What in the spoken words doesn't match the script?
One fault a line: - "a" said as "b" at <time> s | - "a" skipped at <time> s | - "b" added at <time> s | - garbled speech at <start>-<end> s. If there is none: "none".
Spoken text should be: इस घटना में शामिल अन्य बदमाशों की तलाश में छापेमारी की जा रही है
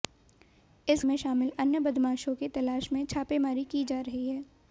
- "घटना" skipped at 1.0 s